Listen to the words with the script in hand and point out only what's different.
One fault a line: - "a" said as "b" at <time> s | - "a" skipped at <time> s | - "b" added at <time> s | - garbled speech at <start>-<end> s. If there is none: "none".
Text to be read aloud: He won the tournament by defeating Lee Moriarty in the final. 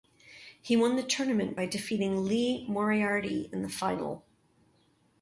none